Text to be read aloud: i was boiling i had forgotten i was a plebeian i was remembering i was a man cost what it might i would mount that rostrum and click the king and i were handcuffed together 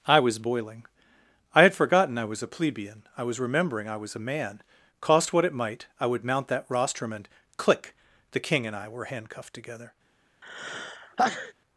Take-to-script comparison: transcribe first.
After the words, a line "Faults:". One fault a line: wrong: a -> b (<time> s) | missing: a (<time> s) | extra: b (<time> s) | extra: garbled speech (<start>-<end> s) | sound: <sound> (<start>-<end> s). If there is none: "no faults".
i was boiling i had forgotten i was a plebeian i was remembering i was a man cost what it might i would mount that rostrum and click the king and i were handcuffed together
Faults:
sound: sneeze (10.4-11.5 s)